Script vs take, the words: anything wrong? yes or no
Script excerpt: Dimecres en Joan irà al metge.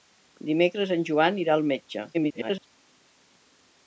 yes